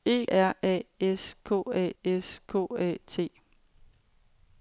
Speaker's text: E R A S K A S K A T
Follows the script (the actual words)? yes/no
yes